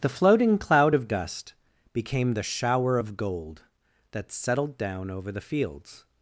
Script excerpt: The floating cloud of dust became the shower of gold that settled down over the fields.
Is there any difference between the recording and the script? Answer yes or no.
no